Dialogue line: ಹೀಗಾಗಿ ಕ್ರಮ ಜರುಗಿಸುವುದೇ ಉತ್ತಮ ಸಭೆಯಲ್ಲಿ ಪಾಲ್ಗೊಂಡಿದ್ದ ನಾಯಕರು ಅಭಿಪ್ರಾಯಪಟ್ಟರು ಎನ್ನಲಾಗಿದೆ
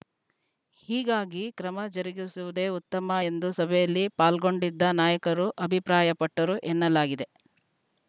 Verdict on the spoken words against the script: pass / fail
fail